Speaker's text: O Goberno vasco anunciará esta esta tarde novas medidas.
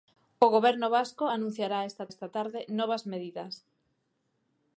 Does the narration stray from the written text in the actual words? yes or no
no